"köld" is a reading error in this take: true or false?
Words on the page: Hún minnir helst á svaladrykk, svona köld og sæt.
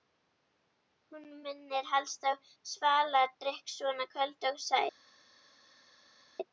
false